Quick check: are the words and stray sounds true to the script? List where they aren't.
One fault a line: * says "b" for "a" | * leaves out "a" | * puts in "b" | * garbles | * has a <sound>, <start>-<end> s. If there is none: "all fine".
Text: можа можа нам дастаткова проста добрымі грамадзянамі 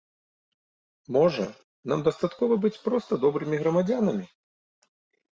* leaves out "можа"
* puts in "быць"